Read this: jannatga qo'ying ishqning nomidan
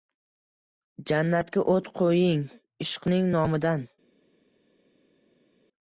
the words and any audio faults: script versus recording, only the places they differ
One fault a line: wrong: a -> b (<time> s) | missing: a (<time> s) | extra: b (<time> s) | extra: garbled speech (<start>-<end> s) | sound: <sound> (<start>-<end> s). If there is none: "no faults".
extra: o't (1.8 s)